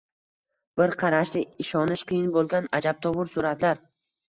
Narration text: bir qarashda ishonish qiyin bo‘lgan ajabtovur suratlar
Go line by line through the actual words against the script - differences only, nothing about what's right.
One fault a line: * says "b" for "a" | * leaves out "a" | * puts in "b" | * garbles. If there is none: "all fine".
all fine